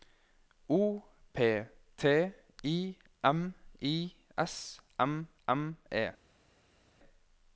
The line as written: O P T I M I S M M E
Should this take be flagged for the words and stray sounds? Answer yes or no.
no